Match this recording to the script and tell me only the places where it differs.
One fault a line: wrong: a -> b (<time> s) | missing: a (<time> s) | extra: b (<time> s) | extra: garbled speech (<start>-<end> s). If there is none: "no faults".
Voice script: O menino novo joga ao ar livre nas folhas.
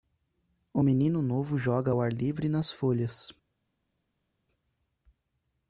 no faults